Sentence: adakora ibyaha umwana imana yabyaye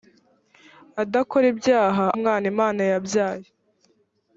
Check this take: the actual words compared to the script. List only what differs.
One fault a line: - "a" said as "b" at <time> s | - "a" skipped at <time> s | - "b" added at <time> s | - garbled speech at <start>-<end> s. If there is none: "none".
none